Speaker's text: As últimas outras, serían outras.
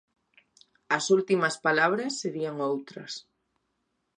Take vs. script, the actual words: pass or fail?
fail